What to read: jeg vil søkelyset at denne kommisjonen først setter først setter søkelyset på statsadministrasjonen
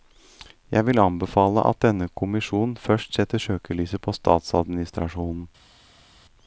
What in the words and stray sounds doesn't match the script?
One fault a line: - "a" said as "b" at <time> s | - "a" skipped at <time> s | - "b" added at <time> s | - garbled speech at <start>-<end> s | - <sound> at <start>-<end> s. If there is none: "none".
- "søkelyset" said as "anbefale" at 1.0 s
- "først setter" skipped at 3.4 s